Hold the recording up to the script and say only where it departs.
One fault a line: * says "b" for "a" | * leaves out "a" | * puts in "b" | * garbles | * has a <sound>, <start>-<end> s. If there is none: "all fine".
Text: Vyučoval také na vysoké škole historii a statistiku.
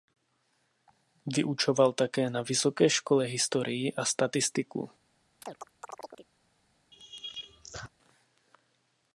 * has a chirp, 5.4-6.3 s
* has a laugh, 6.9-7.9 s